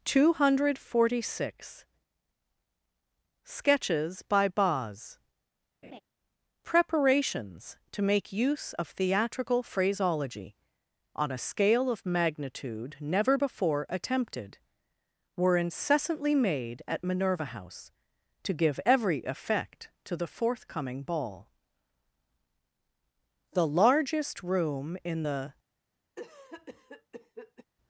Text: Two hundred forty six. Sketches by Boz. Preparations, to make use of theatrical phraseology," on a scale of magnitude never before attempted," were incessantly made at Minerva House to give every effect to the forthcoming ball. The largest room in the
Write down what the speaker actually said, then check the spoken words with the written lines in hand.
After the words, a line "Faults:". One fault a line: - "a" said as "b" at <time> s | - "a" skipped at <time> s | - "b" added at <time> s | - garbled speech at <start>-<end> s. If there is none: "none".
Two hundred forty six. Sketches by Boz. Preparations, to make use of theatrical phraseology," on a scale of magnitude never before attempted," were incessantly made at Minerva House to give every effect to the forthcoming ball. The largest room in the
Faults:
none